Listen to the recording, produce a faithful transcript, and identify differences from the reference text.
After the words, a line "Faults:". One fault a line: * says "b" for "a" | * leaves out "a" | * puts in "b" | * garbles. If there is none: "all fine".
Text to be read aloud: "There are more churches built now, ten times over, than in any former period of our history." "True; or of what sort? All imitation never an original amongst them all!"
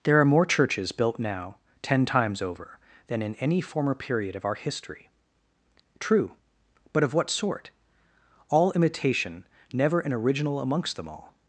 "There are more churches built now, ten times over, than in any former period of our history." "True; but of what sort? All imitation never an original amongst them all!"
Faults:
* says "but" for "or"